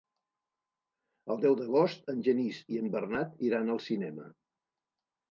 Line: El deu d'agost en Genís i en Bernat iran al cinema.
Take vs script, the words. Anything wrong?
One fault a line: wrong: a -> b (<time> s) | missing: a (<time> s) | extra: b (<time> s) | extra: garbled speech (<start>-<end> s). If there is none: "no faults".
no faults